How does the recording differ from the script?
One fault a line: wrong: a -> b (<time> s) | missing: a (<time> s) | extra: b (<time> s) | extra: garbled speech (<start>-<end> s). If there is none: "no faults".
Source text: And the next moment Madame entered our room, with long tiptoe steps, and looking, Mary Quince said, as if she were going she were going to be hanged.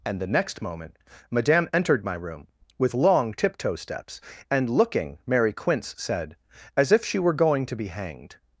wrong: our -> my (2.0 s)
missing: she were going (7.7 s)